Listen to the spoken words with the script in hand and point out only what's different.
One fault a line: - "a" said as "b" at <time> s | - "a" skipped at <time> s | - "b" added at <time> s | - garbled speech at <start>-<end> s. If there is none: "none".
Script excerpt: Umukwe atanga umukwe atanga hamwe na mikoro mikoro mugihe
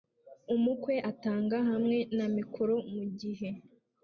- "umukwe atanga" skipped at 1.6 s
- "mikoro" skipped at 2.7 s